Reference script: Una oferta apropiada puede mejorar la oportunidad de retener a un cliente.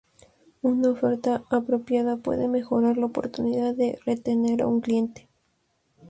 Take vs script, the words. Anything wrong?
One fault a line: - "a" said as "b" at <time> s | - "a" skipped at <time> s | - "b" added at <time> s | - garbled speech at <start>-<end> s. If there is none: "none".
none